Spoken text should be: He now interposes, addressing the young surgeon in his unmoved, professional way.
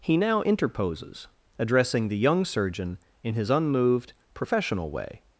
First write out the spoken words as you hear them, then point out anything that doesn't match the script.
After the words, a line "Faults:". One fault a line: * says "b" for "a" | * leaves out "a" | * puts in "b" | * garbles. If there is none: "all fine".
He now interposes, addressing the young surgeon in his unmoved, professional way.
Faults:
all fine